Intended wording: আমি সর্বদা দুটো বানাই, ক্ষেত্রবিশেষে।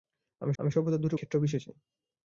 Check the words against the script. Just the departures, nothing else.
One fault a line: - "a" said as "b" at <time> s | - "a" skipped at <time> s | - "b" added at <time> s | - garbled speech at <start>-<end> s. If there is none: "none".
- "আমি" added at 0.6 s
- "বানাই" skipped at 1.2 s